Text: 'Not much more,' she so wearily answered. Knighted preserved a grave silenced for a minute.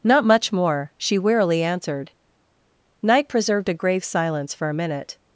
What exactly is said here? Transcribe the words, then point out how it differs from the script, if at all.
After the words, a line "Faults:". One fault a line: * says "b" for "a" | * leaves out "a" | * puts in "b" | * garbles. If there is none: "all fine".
'Not much more,' she wearily answered. Knight preserved a grave silence for a minute.
Faults:
* leaves out "so"
* says "Knight" for "Knighted"
* says "silence" for "silenced"